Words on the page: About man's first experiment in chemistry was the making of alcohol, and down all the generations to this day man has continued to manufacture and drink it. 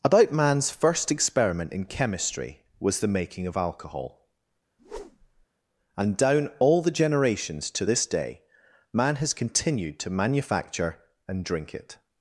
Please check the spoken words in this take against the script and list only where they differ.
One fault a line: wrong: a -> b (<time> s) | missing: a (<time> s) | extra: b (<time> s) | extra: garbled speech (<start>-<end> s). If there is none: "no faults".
no faults